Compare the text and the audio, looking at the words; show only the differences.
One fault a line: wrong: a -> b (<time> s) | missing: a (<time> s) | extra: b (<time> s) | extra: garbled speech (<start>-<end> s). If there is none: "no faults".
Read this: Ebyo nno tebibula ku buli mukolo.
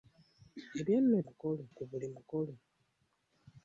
wrong: tebibula -> mukolo (1.3 s)